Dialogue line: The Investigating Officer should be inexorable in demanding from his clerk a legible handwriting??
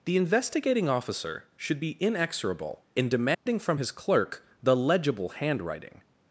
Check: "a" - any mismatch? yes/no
yes